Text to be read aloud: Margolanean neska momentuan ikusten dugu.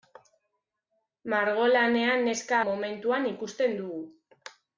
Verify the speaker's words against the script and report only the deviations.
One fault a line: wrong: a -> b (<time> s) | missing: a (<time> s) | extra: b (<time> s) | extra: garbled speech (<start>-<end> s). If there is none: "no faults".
no faults